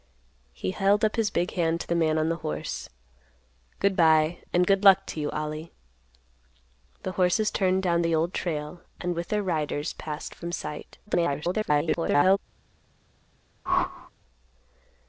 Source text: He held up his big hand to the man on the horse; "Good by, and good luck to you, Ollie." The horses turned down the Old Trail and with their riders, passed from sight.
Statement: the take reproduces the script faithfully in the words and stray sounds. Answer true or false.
false